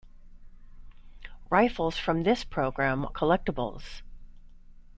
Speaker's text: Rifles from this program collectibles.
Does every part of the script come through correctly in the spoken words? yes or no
yes